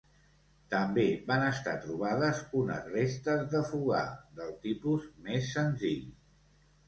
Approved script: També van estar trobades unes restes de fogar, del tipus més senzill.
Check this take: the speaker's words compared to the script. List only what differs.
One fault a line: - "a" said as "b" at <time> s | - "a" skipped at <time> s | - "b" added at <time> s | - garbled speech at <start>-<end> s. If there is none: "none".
none